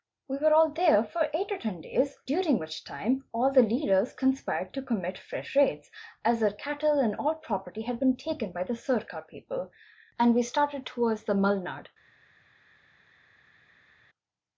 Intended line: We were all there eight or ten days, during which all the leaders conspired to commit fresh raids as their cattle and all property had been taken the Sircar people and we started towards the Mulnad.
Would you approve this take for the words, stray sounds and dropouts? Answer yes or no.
no